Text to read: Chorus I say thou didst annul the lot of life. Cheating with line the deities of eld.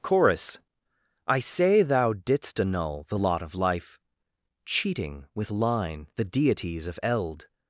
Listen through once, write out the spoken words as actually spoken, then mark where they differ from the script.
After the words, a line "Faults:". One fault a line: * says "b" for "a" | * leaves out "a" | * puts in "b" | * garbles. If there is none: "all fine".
Chorus I say thou didst annul the lot of life. Cheating with line the deities of eld.
Faults:
all fine